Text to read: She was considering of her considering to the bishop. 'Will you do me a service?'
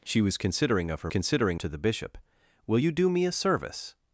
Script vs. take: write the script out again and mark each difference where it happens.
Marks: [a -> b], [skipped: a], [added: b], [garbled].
She was considering of her considering to the bishop. 'Will you do me a service?'